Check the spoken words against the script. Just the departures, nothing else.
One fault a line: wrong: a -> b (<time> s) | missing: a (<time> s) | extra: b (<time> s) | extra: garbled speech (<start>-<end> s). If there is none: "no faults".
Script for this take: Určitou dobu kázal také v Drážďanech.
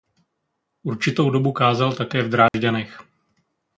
no faults